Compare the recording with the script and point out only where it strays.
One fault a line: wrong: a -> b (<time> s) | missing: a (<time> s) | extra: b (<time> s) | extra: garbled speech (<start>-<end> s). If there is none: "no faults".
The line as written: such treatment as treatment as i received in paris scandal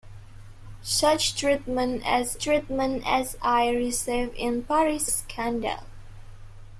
no faults